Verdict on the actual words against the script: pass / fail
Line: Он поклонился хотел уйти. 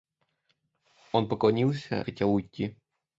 pass